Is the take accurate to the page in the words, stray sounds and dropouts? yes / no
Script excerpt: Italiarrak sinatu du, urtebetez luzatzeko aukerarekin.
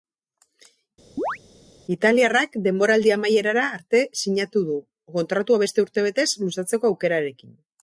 no